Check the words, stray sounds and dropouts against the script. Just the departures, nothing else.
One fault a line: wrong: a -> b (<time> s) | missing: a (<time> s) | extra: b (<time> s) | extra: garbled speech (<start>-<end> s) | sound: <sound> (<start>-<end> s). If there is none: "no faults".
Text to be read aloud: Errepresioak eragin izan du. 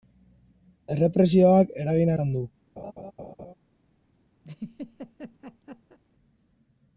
sound: laugh (2.8-3.5 s)
sound: laugh (4.4-6.0 s)